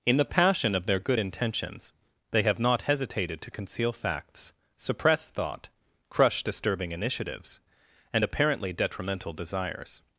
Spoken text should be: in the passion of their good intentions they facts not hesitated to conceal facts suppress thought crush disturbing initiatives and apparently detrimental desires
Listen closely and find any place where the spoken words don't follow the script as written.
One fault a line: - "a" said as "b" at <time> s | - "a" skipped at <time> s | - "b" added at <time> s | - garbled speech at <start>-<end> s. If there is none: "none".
- "facts" said as "have" at 2.4 s